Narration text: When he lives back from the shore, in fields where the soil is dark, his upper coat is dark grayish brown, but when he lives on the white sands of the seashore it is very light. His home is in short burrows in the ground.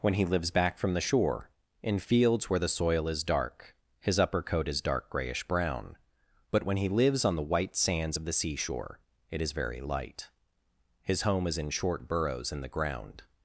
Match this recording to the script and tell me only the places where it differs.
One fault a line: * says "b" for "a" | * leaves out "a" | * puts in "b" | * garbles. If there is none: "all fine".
all fine